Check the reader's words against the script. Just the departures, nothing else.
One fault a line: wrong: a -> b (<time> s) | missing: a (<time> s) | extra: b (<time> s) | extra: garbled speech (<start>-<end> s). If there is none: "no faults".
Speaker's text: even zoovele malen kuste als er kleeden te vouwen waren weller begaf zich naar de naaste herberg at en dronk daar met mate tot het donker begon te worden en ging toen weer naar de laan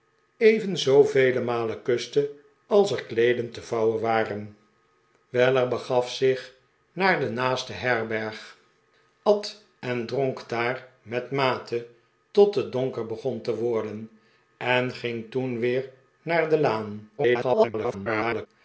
extra: garbled speech (17.2-18.5 s)